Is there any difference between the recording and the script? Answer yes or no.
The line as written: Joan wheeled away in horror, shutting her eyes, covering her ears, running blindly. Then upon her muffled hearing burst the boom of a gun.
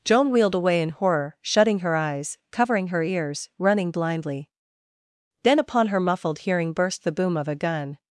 no